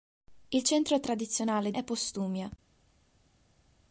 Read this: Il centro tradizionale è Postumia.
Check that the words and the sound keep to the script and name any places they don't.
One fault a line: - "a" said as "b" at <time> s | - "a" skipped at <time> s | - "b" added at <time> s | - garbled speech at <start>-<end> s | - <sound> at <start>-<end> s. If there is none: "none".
none